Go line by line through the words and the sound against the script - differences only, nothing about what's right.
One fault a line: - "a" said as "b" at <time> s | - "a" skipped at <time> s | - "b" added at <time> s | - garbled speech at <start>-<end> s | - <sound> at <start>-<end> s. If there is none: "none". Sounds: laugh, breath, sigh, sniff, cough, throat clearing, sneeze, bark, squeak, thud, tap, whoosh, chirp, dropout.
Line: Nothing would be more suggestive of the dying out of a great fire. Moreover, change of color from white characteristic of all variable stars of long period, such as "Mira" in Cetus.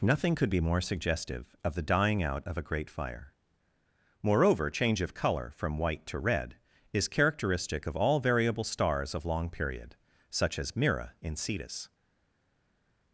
- "would" said as "could" at 0.3 s
- "to red is" added at 6.1 s